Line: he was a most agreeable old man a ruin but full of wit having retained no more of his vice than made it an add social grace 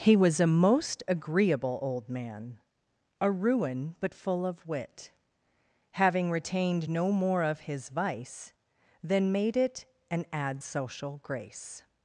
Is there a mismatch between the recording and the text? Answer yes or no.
no